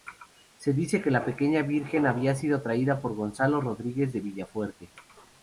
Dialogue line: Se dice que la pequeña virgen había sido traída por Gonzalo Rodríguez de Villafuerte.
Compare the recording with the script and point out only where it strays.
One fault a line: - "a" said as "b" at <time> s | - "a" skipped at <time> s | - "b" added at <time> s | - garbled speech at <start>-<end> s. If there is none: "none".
none